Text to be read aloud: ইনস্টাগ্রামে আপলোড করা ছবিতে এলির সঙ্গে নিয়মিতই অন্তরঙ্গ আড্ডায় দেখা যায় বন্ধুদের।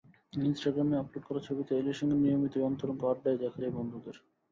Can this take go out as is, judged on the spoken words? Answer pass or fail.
pass